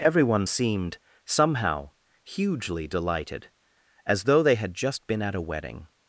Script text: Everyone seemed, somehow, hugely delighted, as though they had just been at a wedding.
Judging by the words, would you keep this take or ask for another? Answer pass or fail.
pass